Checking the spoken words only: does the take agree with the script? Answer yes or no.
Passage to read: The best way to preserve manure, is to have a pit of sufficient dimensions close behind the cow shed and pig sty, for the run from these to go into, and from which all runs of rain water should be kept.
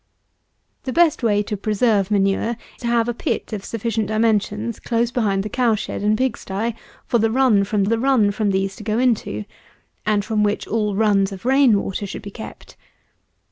no